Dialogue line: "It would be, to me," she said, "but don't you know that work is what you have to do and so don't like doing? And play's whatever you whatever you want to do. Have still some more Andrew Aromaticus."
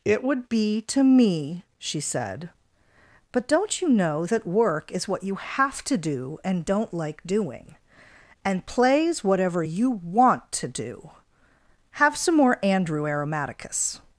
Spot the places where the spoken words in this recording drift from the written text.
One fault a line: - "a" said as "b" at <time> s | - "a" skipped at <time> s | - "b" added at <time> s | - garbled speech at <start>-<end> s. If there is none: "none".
- "so" skipped at 6.7 s
- "whatever you" skipped at 9.9 s
- "still" skipped at 12.2 s